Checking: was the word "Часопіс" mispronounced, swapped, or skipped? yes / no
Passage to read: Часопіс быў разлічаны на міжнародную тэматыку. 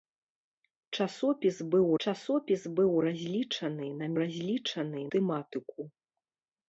no